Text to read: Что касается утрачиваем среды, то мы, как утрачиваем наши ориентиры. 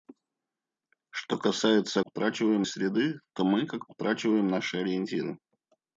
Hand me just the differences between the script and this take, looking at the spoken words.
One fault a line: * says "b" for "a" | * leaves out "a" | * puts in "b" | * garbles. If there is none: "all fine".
all fine